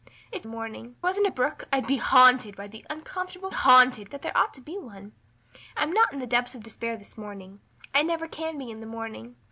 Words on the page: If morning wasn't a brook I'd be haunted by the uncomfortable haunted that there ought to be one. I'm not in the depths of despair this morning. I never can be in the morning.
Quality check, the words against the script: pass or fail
pass